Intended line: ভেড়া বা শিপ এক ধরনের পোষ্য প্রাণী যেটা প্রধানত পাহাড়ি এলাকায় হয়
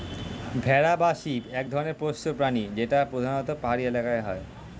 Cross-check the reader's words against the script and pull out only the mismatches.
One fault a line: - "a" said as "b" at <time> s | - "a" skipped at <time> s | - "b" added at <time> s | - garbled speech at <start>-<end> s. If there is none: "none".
none